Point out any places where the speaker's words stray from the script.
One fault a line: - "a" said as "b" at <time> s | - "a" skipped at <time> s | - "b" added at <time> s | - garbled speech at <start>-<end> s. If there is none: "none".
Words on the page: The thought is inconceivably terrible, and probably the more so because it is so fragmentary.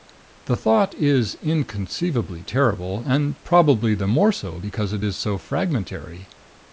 none